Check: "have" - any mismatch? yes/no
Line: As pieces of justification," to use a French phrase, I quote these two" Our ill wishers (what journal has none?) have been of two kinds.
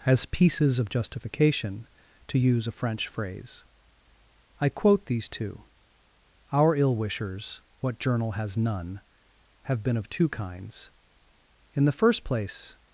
no